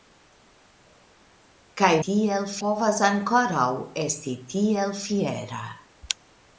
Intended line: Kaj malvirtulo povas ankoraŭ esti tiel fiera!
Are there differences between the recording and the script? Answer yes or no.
yes